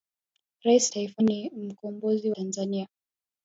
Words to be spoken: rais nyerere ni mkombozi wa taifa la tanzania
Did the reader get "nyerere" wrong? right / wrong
wrong